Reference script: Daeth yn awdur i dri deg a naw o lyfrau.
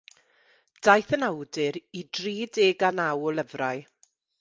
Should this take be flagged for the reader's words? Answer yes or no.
no